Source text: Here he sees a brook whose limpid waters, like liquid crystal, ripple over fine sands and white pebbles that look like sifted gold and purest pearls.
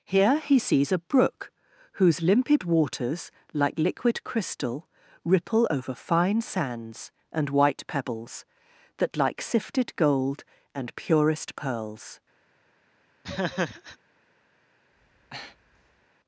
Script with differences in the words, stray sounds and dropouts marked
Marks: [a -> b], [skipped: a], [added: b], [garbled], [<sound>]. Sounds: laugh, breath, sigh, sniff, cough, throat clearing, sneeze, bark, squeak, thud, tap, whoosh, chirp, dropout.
Here he sees a brook whose limpid waters, like liquid crystal, ripple over fine sands and white pebbles that [skipped: look] like sifted gold and purest pearls. [laugh] [breath]